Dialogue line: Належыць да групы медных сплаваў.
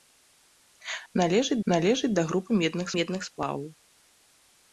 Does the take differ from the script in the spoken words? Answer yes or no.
yes